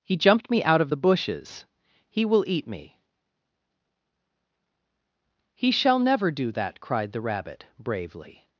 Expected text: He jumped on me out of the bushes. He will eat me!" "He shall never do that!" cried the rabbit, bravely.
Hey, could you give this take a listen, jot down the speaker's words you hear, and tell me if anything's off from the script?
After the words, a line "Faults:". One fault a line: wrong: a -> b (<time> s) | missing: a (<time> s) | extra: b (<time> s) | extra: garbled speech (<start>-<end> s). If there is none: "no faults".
He jumped me out of the bushes. He will eat me!" "He shall never do that!" cried the rabbit, bravely.
Faults:
missing: on (0.5 s)